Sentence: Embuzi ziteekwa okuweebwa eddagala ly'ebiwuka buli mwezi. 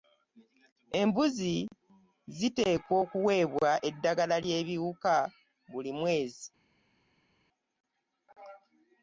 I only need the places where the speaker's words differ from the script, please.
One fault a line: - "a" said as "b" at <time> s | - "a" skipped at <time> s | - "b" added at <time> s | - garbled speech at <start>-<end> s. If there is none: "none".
none